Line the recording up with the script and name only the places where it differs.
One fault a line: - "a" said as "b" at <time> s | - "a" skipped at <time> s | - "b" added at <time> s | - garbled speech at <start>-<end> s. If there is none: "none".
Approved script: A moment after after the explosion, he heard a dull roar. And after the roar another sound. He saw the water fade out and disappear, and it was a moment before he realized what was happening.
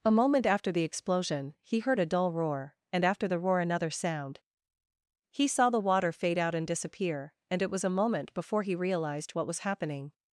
- "after" skipped at 0.7 s